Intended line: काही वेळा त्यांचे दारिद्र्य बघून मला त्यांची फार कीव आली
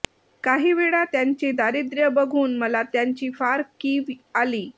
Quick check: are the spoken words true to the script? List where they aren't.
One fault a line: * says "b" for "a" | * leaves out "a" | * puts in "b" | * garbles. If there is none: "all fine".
all fine